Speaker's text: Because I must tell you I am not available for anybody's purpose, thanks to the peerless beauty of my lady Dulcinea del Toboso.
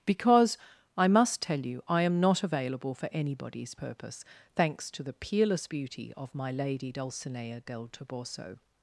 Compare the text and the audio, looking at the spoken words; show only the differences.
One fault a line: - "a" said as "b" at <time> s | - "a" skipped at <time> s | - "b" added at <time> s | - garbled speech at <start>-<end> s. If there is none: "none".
none